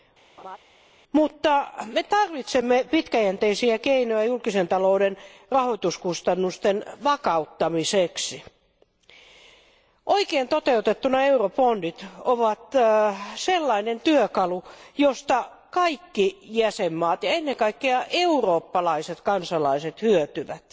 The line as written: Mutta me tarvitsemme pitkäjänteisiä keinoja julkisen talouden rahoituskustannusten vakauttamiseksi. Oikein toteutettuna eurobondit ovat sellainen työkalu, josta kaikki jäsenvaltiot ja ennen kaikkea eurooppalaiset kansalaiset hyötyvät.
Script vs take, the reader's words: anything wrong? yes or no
no